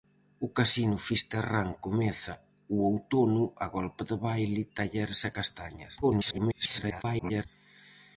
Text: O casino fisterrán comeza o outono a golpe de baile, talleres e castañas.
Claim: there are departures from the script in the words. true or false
true